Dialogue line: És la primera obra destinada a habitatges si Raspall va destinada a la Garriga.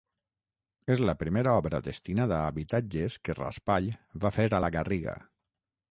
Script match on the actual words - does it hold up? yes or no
no